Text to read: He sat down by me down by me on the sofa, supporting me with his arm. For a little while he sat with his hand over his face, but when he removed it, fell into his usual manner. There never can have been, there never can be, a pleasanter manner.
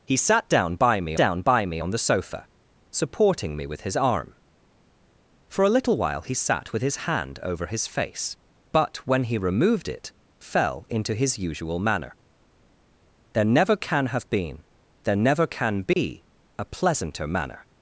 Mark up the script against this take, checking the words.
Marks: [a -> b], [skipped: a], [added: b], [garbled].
He sat down by me down by me on the sofa, supporting me with his arm. For a little while he sat with his hand over his face, but when he removed it, fell into his usual manner. There never can have been, there never can be, a pleasanter manner.